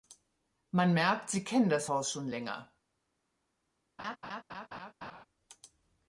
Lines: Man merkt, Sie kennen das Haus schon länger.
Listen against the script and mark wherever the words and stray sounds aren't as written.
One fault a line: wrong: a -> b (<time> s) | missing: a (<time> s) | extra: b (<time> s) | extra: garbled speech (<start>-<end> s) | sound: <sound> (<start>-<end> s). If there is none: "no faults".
sound: laugh (4.0-5.3 s)